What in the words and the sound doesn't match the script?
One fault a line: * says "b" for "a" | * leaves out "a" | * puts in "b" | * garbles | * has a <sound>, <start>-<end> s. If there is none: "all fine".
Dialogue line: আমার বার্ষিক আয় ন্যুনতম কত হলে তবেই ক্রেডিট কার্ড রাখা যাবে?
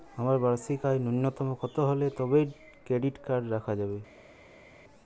all fine